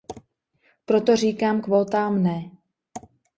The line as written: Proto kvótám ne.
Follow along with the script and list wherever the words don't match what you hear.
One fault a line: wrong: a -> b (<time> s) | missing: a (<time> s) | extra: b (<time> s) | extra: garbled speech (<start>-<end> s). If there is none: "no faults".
extra: říkám (1.1 s)